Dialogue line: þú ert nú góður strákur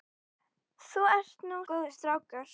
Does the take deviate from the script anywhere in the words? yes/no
no